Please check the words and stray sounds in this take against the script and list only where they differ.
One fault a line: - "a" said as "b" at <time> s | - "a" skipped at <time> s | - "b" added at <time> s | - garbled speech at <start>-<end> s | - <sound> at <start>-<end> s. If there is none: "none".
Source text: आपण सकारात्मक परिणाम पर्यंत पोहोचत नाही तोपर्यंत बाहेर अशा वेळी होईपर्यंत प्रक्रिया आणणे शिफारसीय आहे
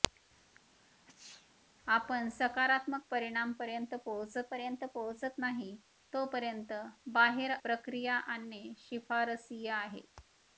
- sneeze at 0.7-1.6 s
- "पर्यंत पोहोचत" added at 4.5 s
- "अशा वेळी होईपर्यंत" skipped at 7.5 s